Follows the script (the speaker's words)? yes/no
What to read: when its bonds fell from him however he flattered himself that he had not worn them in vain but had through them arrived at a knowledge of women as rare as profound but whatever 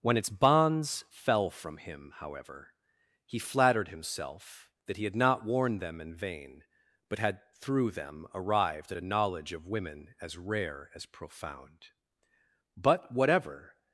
yes